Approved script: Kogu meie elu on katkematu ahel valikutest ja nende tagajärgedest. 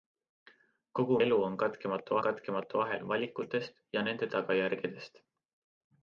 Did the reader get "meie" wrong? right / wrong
wrong